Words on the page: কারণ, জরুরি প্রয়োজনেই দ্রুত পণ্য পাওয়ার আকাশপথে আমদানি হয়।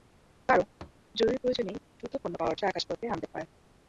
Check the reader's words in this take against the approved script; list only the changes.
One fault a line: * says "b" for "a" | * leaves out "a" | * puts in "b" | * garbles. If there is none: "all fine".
all fine